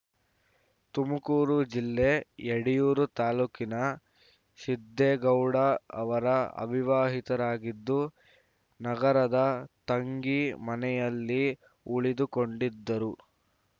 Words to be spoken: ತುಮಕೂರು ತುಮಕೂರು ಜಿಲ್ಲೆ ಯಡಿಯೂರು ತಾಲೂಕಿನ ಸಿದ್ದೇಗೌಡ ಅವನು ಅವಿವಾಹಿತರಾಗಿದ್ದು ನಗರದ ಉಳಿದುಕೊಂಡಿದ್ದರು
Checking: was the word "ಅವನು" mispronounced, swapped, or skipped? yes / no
yes